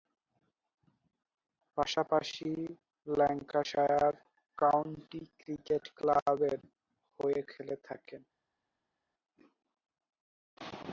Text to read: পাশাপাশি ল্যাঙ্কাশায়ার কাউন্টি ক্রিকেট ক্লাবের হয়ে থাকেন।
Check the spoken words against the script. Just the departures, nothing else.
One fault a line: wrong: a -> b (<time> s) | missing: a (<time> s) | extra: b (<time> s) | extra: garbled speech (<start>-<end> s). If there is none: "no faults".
extra: খেলে (7.5 s)